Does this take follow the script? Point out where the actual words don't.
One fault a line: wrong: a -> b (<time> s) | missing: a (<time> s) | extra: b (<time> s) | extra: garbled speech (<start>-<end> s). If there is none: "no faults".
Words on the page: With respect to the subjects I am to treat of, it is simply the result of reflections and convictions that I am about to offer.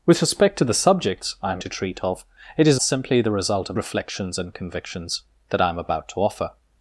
no faults